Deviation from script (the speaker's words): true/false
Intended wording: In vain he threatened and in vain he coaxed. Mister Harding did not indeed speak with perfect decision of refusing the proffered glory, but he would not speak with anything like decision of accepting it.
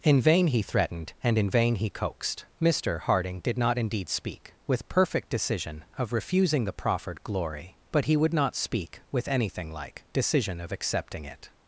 false